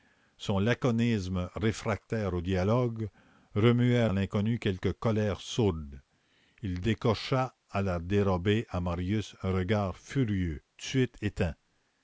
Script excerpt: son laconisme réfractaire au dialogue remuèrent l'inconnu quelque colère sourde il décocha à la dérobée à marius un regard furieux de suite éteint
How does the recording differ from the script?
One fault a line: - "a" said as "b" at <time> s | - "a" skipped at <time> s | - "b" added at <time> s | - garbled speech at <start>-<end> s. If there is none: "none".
none